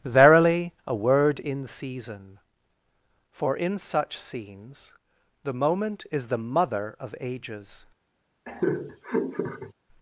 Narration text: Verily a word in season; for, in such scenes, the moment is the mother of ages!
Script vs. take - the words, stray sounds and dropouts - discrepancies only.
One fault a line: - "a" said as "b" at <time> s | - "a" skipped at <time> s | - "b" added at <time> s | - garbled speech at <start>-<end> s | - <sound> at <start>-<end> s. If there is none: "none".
- laugh at 8.5-9.7 s